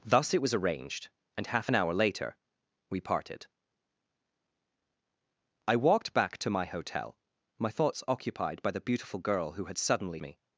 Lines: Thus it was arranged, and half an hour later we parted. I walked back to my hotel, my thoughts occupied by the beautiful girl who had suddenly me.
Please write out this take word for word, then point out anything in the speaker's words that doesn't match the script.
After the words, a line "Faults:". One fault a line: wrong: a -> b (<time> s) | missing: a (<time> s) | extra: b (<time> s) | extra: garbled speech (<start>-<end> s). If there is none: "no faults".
Thus it was arranged, and half an hour later we parted. I walked back to my hotel, my thoughts occupied by the beautiful girl who had suddenly me.
Faults:
no faults